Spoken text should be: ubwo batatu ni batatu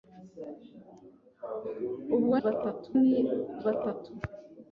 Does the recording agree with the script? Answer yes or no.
yes